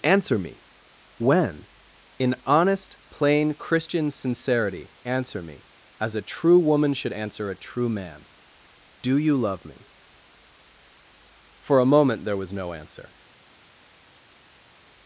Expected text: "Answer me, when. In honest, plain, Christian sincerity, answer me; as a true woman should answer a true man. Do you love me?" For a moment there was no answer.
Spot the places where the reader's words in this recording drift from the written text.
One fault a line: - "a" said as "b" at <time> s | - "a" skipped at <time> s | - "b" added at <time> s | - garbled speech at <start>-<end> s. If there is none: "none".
none